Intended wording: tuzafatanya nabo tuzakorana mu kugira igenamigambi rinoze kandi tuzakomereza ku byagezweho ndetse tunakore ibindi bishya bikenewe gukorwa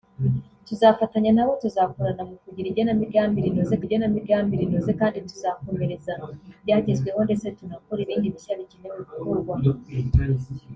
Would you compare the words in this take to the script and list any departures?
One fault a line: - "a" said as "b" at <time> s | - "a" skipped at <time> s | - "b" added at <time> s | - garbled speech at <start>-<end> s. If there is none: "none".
- "igenamigambi rinoze" added at 3.8 s